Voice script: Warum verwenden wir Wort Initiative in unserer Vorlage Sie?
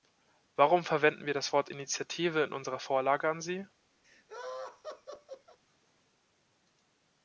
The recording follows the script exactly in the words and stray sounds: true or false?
false